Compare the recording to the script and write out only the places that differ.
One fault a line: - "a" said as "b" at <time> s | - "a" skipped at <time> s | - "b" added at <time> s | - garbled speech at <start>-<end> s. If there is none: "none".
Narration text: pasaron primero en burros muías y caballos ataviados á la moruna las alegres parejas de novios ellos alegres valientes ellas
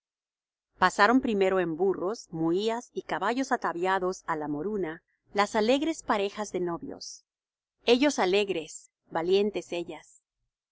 none